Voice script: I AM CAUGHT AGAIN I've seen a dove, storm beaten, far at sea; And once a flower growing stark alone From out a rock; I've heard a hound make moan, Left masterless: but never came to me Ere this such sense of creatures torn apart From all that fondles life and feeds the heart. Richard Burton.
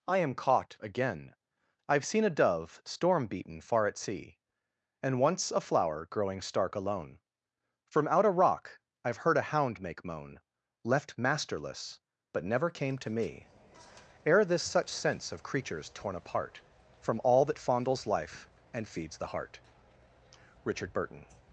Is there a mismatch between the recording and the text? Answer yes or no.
no